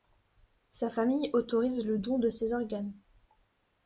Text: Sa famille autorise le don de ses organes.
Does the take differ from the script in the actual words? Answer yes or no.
no